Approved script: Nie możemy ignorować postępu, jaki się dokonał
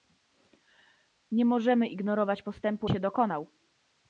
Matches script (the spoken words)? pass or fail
fail